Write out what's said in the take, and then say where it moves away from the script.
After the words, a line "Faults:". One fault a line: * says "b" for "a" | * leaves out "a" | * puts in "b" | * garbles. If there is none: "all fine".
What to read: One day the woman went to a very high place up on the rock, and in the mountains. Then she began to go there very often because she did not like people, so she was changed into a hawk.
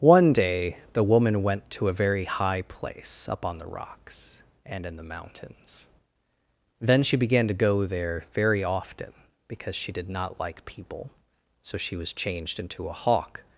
One day the woman went to a very high place up on the rocks, and in the mountains. Then she began to go there very often because she did not like people, so she was changed into a hawk.
Faults:
* says "rocks" for "rock"